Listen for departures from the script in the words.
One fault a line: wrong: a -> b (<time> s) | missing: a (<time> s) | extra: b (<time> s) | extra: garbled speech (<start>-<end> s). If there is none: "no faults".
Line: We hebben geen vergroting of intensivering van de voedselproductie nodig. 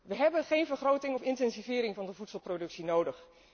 no faults